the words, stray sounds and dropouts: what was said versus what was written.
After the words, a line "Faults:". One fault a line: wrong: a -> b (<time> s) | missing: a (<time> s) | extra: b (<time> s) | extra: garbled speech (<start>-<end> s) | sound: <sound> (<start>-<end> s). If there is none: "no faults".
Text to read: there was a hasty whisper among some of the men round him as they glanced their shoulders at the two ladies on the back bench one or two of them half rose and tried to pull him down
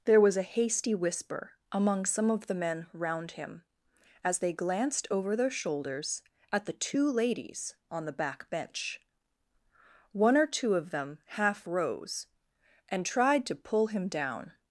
there was a hasty whisper among some of the men round him as they glanced over their shoulders at the two ladies on the back bench one or two of them half rose and tried to pull him down
Faults:
extra: over (5.1 s)